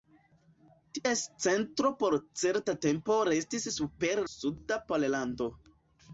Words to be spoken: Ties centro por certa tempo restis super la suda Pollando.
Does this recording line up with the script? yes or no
no